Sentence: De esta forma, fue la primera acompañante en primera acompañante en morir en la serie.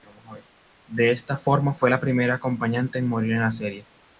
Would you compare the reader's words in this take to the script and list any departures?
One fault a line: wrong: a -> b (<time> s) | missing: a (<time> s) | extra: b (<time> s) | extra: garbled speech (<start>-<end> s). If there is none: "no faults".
missing: primera acompañante en (3.1 s)